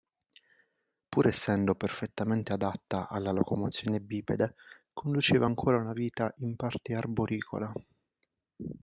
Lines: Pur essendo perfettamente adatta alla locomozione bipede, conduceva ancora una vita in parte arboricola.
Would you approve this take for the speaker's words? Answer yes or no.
yes